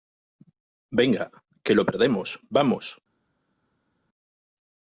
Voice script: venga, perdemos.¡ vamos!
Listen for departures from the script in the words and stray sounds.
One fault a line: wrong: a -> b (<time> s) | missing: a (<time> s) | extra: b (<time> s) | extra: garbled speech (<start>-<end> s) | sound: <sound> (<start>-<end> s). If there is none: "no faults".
extra: que lo (1.6 s)